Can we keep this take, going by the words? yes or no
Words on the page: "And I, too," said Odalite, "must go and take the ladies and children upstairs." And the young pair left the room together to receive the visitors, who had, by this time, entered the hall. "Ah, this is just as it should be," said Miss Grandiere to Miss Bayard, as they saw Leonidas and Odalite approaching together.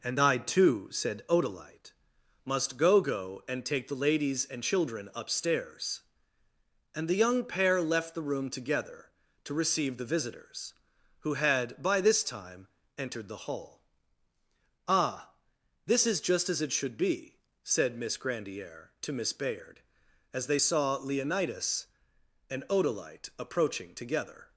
no